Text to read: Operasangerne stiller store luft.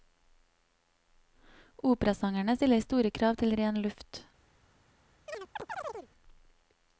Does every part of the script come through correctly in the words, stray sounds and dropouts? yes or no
no